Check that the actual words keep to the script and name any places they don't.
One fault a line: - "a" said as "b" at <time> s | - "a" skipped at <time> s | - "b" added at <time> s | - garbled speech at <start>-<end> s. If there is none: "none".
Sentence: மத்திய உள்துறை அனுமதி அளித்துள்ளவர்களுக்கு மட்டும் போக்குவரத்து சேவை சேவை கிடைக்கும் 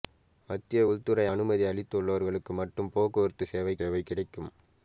none